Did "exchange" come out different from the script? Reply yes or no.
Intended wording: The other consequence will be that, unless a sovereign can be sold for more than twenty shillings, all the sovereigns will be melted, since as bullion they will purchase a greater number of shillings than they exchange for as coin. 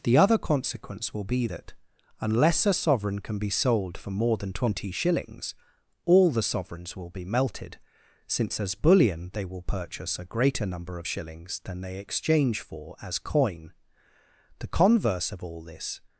no